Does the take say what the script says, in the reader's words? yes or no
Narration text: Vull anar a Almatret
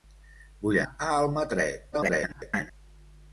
no